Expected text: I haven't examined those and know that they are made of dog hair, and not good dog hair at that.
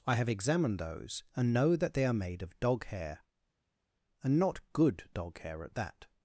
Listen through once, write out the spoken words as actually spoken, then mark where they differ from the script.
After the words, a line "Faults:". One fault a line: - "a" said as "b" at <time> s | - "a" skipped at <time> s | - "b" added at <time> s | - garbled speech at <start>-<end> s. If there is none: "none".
I have examined those and know that they are made of dog hair, and not good dog hair at that.
Faults:
- "haven't" said as "have" at 0.1 s